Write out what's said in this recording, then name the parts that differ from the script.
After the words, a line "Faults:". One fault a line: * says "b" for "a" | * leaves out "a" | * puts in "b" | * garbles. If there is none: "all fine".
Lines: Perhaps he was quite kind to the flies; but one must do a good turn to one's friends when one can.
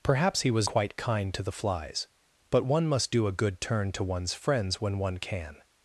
Perhaps he was quite kind to the flies; but one must do a good turn to one's friends when one can.
Faults:
all fine